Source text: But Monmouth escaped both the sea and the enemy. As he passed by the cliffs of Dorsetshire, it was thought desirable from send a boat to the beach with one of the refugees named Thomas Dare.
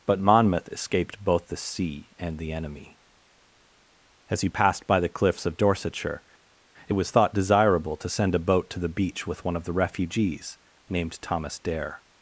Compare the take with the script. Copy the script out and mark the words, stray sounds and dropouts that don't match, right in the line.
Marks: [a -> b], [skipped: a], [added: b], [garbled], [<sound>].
But Monmouth escaped both the sea and the enemy. As he passed by the cliffs of Dorsetshire, it was thought desirable [from -> to] send a boat to the beach with one of the refugees named Thomas Dare.